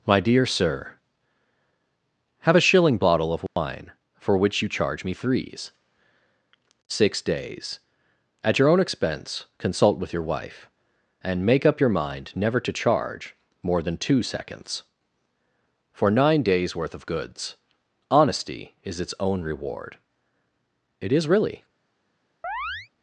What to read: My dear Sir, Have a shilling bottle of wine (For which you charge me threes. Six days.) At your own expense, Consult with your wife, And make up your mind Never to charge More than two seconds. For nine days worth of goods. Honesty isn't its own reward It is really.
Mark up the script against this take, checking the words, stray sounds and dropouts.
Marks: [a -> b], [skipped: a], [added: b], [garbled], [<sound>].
My dear Sir, Have a shilling bottle of wine [dropout] (For which you charge me threes. Six days.) At your own expense, Consult with your wife, And make up your mind Never to charge More than two seconds. For nine days worth of goods. Honesty [isn't -> is] its own reward It is really. [chirp]